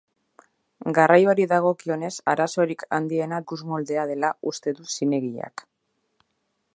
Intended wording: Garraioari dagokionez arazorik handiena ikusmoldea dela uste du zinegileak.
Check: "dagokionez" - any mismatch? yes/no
no